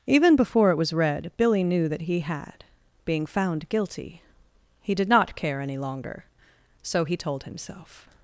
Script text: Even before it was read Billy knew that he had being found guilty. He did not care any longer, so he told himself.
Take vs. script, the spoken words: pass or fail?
pass